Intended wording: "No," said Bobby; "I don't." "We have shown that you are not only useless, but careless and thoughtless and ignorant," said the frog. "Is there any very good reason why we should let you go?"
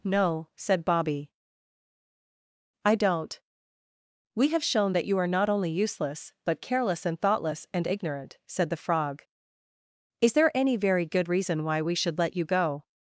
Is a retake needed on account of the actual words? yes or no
no